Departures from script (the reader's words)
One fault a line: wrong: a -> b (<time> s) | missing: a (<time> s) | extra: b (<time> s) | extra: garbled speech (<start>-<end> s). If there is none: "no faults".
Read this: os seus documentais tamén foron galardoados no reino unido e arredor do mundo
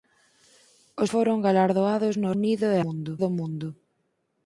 missing: seus documentais tamén (1.1 s)
missing: reino (2.3 s)
wrong: arredor -> mundo (2.8 s)